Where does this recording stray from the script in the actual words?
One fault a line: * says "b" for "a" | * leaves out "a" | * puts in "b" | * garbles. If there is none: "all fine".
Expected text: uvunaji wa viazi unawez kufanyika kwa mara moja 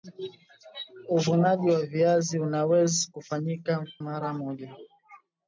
* leaves out "kwa"